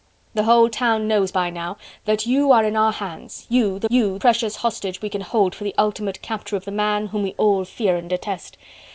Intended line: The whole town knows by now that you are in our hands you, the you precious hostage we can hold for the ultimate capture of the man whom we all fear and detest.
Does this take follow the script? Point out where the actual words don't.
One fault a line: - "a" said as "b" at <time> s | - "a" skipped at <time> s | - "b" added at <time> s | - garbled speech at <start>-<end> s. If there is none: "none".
none